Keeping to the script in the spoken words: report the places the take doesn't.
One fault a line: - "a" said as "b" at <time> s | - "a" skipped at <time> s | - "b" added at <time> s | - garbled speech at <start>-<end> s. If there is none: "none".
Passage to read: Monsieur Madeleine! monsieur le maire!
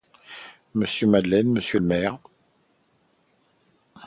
none